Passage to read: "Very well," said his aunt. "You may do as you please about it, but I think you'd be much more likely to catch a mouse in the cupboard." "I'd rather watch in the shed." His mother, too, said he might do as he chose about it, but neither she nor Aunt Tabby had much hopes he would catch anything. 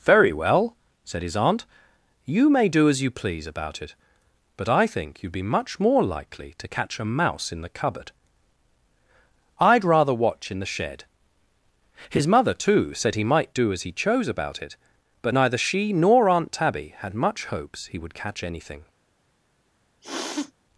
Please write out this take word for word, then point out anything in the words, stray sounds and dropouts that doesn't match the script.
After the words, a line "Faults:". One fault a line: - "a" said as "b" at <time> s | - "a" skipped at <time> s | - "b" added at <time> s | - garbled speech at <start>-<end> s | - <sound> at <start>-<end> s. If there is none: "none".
"Very well," said his aunt. "You may do as you please about it, but I think you'd be much more likely to catch a mouse in the cupboard." "I'd rather watch in the shed." His mother, too, said he might do as he chose about it, but neither she nor Aunt Tabby had much hopes he would catch anything.
Faults:
- sniff at 20.0-20.5 s